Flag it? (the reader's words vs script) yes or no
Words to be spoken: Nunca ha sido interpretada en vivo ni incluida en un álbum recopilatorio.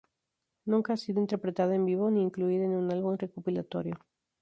no